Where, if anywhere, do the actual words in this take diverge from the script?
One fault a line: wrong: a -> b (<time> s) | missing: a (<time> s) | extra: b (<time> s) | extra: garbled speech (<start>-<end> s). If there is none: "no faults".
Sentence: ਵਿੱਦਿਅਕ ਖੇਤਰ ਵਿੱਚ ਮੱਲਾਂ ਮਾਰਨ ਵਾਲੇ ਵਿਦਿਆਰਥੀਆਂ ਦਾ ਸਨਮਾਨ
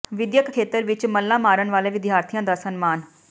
no faults